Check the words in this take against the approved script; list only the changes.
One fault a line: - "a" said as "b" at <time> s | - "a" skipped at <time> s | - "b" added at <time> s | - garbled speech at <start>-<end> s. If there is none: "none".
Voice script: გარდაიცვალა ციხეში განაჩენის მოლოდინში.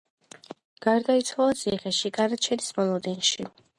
none